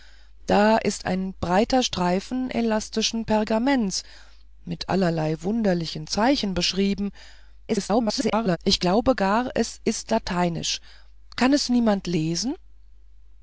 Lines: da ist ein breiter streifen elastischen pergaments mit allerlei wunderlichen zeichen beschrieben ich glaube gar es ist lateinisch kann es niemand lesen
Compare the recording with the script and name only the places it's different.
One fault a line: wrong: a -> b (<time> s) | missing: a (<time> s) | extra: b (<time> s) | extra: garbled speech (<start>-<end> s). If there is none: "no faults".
extra: garbled speech (7.7-8.6 s)